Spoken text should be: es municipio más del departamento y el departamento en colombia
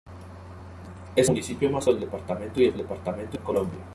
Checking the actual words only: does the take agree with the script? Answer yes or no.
yes